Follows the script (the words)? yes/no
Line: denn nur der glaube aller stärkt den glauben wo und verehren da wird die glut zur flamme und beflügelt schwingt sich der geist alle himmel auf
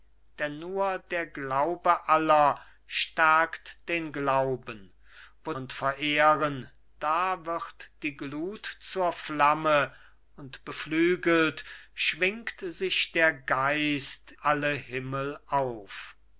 yes